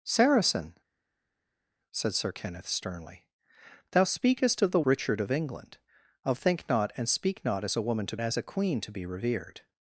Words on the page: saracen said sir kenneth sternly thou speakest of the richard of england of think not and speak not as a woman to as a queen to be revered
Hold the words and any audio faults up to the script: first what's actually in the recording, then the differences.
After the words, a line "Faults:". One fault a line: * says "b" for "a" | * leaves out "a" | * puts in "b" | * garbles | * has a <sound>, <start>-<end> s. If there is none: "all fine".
saracen said sir kenneth sternly thou speakest of the richard of england of think not and speak not as a woman to as a queen to be revered
Faults:
all fine